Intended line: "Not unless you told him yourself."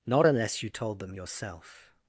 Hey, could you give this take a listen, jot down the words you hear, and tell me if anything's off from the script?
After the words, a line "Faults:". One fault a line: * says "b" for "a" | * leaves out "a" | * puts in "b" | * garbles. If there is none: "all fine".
"Not unless you told them yourself."
Faults:
* says "them" for "him"